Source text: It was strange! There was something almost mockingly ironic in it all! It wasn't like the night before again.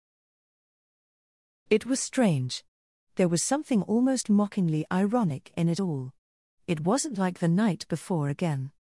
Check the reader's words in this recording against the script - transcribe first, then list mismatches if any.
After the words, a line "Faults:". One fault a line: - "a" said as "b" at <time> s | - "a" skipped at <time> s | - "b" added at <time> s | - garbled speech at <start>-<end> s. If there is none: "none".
It was strange! There was something almost mockingly ironic in it all! It wasn't like the night before again.
Faults:
none